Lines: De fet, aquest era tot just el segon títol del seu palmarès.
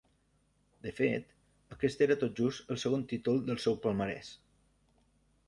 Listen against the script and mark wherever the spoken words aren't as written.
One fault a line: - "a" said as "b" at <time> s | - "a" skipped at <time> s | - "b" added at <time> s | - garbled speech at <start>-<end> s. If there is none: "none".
none